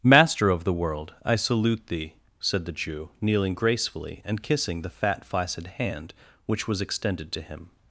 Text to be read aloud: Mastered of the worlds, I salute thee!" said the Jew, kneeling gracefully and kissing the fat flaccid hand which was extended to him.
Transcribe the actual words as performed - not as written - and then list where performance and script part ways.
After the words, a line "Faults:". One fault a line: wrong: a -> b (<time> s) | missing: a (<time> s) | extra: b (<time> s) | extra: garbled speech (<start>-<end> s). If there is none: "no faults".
Master of the world, I salute thee!" said the Jew, kneeling gracefully and kissing the fat flaccid hand which was extended to him.
Faults:
wrong: Mastered -> Master (0.0 s)
wrong: worlds -> world (0.7 s)